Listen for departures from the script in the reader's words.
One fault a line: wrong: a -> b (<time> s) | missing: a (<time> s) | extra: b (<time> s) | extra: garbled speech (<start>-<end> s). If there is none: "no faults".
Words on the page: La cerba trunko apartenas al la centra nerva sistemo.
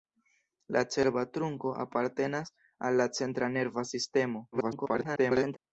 extra: garbled speech (4.5-5.6 s)